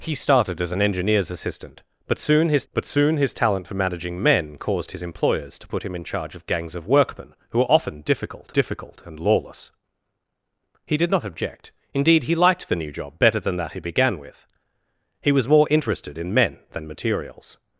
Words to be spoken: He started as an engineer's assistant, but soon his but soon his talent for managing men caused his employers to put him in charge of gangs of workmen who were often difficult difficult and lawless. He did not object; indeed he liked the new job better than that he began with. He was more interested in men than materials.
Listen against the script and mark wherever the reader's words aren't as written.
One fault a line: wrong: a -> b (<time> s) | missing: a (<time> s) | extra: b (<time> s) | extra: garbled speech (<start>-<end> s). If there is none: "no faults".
no faults